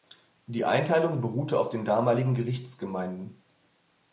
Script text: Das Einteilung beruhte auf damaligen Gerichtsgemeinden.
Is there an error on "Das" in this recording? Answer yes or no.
yes